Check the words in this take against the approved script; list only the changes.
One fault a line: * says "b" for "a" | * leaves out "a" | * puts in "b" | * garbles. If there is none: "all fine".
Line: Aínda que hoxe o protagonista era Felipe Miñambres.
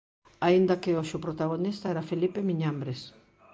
all fine